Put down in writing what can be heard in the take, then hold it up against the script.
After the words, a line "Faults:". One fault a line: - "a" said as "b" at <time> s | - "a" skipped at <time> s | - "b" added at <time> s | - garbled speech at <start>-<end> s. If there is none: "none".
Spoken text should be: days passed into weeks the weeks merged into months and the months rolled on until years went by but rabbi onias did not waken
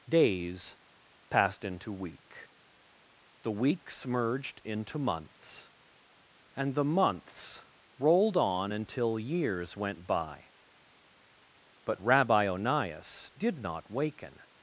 days passed into week the weeks merged into months and the months rolled on until years went by but rabbi onias did not waken
Faults:
- "weeks" said as "week" at 1.9 s